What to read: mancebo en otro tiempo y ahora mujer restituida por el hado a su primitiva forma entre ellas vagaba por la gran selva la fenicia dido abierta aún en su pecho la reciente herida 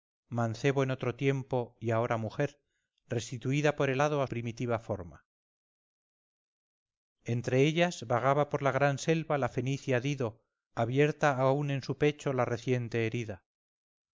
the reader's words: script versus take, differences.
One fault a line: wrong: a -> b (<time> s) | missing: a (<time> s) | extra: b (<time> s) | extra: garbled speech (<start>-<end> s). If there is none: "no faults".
missing: su (4.3 s)